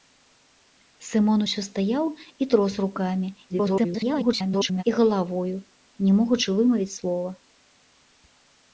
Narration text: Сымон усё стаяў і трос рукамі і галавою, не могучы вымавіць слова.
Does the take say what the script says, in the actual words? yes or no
no